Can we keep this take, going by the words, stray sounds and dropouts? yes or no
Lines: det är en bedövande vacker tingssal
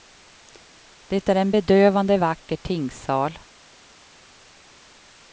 yes